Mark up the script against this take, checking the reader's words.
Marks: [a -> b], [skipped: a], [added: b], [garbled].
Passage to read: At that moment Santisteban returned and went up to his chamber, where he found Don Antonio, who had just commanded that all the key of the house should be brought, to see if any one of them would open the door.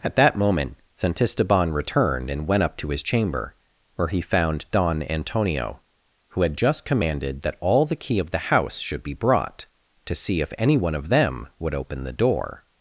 At that moment Santisteban returned and went up to his chamber, where he found Don Antonio, who had just commanded that all the key of the house should be brought, to see if any one of them would open the door.